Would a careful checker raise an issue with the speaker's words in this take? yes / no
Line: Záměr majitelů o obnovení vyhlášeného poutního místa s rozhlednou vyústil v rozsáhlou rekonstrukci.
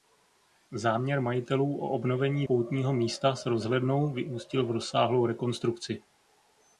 yes